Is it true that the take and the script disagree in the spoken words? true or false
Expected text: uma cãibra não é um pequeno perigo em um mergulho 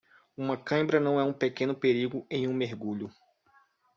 false